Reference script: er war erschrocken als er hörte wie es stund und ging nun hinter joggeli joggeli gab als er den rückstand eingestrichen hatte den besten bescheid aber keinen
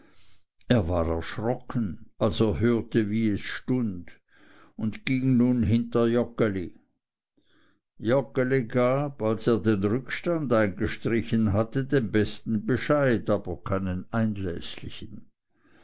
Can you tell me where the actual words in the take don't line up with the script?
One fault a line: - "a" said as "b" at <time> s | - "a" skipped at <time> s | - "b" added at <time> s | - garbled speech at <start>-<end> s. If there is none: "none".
none